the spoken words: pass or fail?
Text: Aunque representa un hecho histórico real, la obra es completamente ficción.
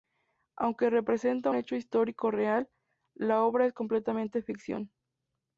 fail